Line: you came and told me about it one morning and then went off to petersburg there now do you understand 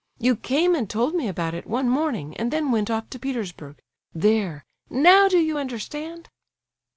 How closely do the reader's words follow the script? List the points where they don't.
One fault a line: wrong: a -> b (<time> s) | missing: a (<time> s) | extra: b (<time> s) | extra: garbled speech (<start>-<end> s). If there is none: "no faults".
no faults